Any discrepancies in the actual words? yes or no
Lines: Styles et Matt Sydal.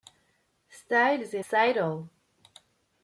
yes